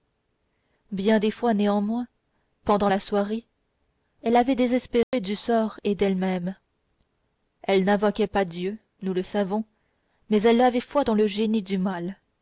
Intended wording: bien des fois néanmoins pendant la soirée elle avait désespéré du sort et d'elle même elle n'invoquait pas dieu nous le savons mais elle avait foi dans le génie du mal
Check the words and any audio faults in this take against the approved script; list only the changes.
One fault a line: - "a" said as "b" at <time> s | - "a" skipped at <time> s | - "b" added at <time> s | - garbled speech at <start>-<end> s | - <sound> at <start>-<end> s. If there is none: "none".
- dropout at 5.0-5.1 s